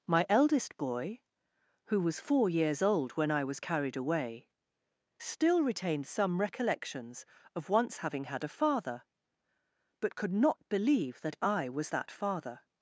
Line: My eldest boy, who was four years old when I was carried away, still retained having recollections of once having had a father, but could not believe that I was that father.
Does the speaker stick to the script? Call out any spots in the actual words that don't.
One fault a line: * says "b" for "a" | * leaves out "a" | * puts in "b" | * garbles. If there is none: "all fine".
* says "some" for "having"